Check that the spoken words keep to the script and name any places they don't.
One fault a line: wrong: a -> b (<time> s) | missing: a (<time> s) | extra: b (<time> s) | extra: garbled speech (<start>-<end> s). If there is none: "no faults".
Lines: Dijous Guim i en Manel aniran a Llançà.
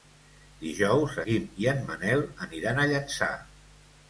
no faults